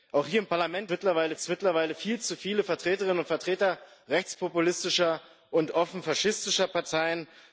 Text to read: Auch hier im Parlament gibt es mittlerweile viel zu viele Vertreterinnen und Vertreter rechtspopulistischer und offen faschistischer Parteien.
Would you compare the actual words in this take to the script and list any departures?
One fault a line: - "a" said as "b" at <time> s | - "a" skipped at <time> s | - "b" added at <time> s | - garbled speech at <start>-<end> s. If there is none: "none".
- "gibt" said as "mittlerweile" at 0.9 s